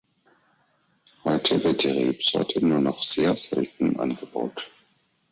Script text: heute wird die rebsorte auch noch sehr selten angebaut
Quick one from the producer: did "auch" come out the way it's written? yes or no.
no